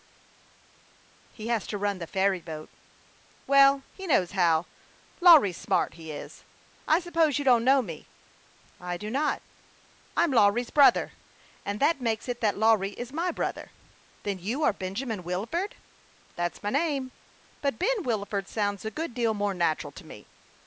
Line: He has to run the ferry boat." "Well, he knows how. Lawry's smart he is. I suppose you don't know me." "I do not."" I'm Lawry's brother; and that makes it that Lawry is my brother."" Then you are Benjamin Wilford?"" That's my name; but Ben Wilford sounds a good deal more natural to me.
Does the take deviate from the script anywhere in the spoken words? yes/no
no